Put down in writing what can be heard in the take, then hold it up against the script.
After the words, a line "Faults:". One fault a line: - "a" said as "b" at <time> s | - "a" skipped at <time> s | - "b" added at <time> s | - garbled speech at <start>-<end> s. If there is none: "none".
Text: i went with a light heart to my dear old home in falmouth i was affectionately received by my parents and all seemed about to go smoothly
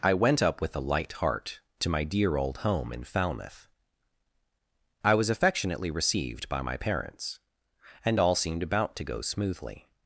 i went up with a light heart to my dear old home in falmouth i was affectionately received by my parents and all seemed about to go smoothly
Faults:
- "up" added at 0.4 s